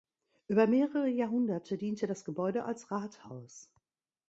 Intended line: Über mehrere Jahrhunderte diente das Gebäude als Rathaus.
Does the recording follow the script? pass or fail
pass